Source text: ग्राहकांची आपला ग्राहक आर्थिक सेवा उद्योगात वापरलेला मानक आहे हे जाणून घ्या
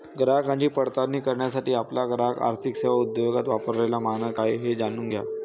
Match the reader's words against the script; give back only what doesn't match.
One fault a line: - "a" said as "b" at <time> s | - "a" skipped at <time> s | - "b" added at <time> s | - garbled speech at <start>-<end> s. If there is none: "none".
- "पडताळणी करण्यासाठी" added at 0.7 s